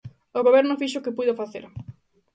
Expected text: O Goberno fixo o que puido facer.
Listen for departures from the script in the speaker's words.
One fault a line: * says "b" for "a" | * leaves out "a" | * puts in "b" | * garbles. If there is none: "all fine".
all fine